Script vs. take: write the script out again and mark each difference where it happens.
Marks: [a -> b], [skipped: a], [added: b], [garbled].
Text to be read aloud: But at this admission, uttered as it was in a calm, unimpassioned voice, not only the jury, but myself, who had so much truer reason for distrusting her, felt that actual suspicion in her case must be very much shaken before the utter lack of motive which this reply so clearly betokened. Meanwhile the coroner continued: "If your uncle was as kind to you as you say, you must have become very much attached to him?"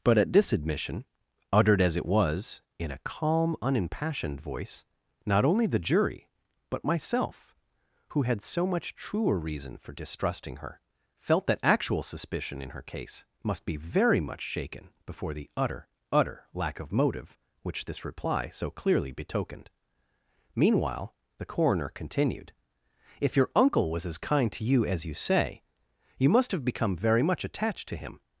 But at this admission, uttered as it was in a calm, unimpassioned voice, not only the jury, but myself, who had so much truer reason for distrusting her, felt that actual suspicion in her case must be very much shaken before the utter [added: utter] lack of motive which this reply so clearly betokened. Meanwhile the coroner continued: "If your uncle was as kind to you as you say, you must have become very much attached to him?"